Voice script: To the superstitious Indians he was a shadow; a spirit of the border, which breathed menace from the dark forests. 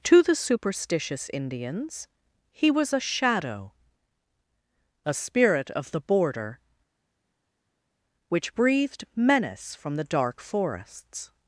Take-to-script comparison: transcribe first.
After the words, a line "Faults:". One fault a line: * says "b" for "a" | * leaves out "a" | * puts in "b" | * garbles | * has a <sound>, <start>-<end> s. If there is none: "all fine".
To the superstitious Indians he was a shadow; a spirit of the border, which breathed menace from the dark forests.
Faults:
all fine